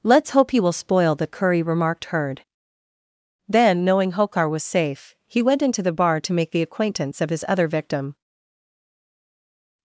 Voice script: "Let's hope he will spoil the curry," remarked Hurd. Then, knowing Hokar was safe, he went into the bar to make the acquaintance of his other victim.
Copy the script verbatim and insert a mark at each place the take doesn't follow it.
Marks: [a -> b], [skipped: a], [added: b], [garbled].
"Let's hope he will spoil the curry," remarked Hurd. Then, knowing Hokar was safe, he went into the bar to make the acquaintance of his other victim.